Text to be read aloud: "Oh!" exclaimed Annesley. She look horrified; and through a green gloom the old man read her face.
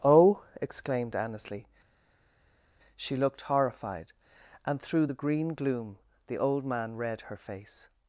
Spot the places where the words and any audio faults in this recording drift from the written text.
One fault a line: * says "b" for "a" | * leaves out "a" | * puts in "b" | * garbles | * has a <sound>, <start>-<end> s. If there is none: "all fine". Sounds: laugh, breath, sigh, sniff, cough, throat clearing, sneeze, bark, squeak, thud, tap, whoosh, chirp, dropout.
* says "looked" for "look"
* says "the" for "a"